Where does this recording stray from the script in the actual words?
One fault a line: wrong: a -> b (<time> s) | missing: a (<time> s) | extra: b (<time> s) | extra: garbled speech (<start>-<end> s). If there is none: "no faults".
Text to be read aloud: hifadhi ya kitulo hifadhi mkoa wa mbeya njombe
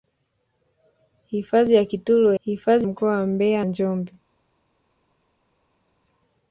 no faults